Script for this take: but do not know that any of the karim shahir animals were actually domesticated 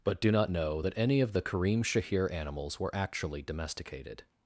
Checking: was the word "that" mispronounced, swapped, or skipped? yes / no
no